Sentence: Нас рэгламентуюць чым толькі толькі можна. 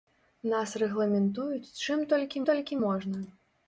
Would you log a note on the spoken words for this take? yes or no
no